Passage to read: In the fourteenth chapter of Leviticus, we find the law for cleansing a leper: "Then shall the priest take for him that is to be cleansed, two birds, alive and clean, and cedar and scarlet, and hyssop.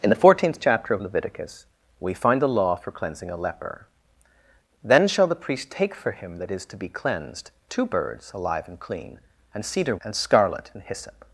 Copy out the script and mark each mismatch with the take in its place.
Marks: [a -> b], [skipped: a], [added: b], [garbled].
In the fourteenth chapter of Leviticus, we find the law for cleansing a leper: "Then shall the priest take for him that is to be cleansed, two birds, alive and clean, and cedar and scarlet, and hyssop.